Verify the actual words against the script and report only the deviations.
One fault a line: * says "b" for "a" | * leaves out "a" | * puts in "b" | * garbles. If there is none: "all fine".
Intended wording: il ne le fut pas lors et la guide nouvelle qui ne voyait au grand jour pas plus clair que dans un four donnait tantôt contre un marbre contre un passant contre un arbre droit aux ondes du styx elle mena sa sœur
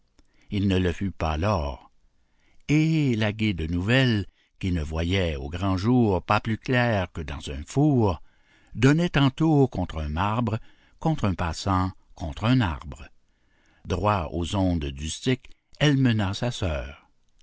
all fine